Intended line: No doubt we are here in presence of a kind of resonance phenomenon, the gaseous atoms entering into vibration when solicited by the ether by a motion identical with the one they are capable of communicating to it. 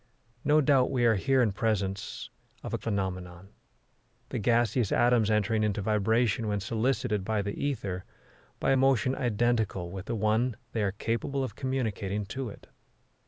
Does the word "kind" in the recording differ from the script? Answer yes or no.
yes